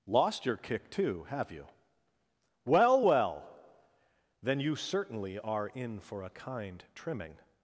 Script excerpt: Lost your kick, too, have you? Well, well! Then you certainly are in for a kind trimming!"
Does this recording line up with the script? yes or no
yes